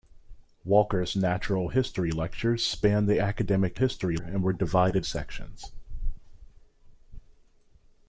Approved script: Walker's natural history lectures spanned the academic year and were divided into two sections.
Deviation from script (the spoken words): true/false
true